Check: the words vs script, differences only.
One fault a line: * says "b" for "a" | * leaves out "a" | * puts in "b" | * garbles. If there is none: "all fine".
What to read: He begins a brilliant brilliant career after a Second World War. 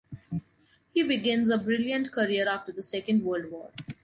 * leaves out "brilliant"
* says "the" for "a"